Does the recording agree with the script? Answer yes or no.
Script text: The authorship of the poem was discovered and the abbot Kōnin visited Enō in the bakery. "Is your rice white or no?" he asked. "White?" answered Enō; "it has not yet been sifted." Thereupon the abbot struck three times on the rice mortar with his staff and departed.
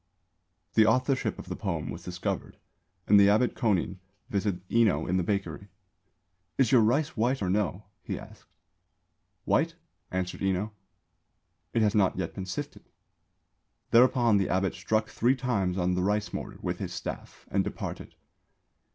yes